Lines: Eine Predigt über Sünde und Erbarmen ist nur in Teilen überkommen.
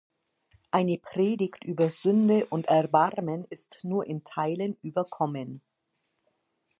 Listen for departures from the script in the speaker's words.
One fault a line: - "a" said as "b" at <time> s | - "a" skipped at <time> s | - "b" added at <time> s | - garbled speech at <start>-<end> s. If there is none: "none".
none